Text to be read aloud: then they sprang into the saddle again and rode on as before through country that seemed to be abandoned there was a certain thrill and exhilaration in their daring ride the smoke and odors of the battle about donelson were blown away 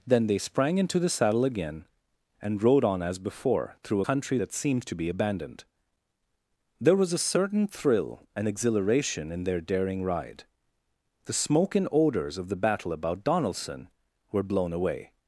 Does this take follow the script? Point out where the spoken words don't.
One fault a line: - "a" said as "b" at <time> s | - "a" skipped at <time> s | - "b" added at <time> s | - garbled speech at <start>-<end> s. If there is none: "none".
none